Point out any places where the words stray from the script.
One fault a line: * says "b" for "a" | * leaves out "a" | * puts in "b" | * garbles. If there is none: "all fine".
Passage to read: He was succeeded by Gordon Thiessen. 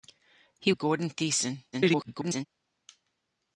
* leaves out "was succeeded by"
* garbles